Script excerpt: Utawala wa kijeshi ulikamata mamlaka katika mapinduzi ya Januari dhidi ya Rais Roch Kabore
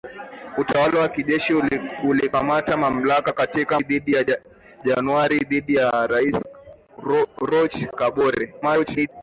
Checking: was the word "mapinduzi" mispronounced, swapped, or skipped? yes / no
yes